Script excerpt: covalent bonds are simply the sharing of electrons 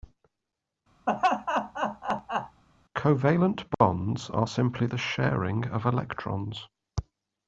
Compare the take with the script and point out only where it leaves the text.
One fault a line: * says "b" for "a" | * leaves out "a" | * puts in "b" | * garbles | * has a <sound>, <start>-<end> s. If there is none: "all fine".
* has a laugh, 1.1-2.6 s